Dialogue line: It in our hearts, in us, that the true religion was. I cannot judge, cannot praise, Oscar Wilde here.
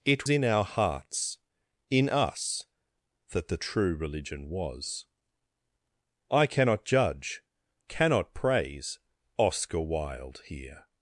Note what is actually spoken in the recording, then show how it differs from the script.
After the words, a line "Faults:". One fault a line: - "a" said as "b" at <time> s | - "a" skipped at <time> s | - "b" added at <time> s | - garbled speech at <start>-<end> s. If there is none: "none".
It in our hearts, in us, that the true religion was. I cannot judge, cannot praise, Oscar Wilde here.
Faults:
none